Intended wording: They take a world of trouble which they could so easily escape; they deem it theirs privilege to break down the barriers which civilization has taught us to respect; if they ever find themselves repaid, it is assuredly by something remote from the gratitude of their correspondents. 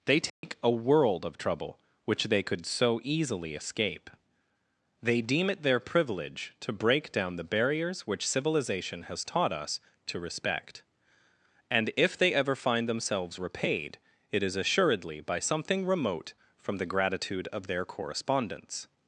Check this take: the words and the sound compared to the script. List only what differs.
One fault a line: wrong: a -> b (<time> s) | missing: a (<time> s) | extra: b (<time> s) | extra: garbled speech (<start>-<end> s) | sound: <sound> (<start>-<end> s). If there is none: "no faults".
sound: dropout (0.3-0.4 s)
wrong: theirs -> their (5.6 s)
extra: and (11.7 s)